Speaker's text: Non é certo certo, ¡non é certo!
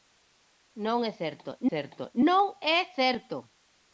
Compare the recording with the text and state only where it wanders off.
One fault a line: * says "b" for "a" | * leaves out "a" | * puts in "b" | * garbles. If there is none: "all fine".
all fine